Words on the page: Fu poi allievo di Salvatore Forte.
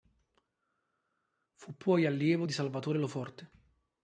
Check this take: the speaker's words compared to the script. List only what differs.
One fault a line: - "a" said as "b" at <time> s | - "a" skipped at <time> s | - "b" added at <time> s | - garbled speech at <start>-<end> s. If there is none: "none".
- "Lo" added at 3.0 s